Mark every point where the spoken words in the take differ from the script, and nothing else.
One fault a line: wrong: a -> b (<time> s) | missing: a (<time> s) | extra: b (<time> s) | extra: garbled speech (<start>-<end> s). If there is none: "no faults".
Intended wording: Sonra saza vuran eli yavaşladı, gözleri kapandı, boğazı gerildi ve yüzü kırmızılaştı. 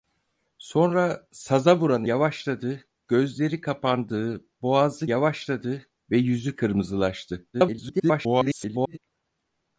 missing: eli (2.0 s)
wrong: gerildi -> yavaşladı (5.0 s)
extra: garbled speech (7.5-9.0 s)